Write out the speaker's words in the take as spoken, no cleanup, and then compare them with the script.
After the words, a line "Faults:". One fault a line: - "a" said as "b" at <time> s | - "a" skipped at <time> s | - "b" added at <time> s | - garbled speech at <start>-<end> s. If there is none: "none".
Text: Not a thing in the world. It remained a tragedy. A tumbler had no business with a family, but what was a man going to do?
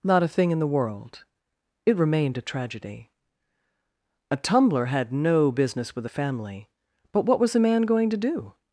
Not a thing in the world. It remained a tragedy. A tumbler had no business with a family, but what was a man going to do?
Faults:
none